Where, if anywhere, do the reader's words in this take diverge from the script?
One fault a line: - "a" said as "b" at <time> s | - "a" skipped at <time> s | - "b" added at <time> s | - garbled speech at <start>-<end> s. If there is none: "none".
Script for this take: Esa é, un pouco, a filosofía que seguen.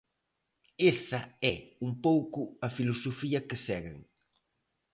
none